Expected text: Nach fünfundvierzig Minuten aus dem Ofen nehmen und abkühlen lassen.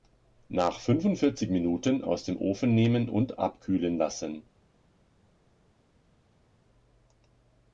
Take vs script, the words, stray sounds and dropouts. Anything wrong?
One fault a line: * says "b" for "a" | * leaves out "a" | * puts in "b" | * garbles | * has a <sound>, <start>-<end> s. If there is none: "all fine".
all fine